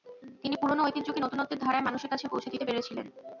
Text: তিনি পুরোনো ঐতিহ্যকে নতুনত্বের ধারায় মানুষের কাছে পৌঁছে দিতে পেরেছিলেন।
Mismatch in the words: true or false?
false